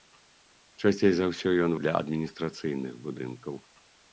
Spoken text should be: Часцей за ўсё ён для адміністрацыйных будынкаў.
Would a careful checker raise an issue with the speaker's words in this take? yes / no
no